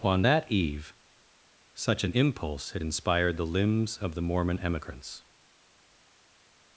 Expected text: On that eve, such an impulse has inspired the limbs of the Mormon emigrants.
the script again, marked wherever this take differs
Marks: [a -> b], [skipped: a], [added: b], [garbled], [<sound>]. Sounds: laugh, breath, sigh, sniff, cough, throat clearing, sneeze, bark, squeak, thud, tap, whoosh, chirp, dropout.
On that eve, such an impulse [has -> had] inspired the limbs of the Mormon emigrants.